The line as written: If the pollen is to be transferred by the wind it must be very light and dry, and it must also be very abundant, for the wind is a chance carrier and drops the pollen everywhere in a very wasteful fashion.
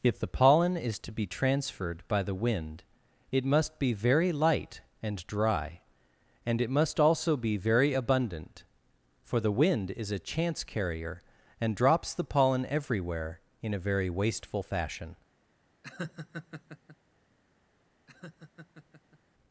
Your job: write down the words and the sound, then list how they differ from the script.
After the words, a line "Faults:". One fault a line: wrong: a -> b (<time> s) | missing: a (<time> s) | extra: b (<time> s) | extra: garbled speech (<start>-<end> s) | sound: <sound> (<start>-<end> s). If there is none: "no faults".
If the pollen is to be transferred by the wind it must be very light and dry, and it must also be very abundant, for the wind is a chance carrier and drops the pollen everywhere in a very wasteful fashion.
Faults:
sound: laugh (15.8-17.0 s)
sound: laugh (18.1-19.2 s)